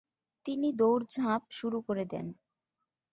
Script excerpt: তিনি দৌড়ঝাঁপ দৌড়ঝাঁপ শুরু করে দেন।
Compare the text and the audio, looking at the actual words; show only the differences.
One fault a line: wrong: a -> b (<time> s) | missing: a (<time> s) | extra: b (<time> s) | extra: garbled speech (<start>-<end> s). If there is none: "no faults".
missing: দৌড়ঝাঁপ (1.4 s)